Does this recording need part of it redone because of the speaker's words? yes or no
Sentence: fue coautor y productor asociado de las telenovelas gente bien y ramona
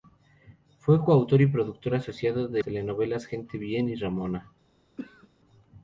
yes